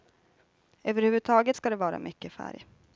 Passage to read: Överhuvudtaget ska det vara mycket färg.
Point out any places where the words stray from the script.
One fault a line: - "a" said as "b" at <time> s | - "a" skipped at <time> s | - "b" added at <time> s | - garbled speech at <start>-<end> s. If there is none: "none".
none